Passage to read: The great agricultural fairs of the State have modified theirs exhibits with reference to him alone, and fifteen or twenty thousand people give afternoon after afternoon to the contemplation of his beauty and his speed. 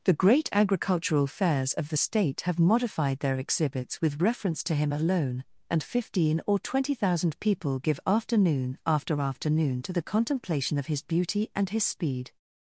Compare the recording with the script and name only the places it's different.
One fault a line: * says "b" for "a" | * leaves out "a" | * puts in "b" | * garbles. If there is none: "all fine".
* says "their" for "theirs"